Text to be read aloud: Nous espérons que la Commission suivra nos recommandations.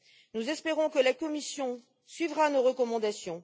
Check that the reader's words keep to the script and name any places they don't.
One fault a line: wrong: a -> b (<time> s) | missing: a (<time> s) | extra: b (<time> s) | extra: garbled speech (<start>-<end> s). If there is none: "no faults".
no faults